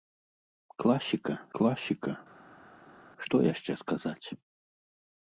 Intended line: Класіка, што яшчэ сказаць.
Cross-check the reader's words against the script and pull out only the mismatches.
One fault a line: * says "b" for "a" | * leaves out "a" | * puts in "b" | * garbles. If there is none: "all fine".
* puts in "класіка"